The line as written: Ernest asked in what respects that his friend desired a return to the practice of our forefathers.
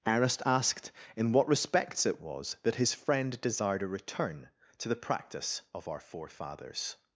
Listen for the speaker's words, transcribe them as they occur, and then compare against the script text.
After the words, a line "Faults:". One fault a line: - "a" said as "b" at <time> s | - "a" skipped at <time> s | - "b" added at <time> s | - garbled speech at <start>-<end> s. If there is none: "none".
Ernest asked in what respects it was that his friend desired a return to the practice of our forefathers.
Faults:
- "it was" added at 2.0 s